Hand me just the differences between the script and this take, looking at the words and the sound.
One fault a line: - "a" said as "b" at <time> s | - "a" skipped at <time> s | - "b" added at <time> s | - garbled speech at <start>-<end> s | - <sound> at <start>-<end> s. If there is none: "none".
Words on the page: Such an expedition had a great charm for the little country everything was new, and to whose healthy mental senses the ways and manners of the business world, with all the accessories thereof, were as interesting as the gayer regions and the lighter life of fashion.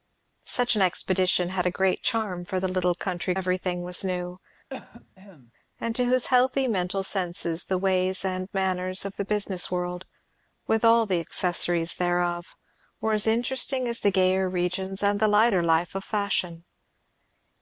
- cough at 4.7-5.5 s